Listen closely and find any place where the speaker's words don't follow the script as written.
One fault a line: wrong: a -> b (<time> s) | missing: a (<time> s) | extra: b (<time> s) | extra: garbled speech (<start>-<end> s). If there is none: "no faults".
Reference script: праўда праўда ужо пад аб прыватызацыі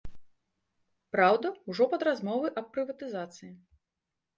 missing: праўда (1.5 s)
extra: размовы (2.1 s)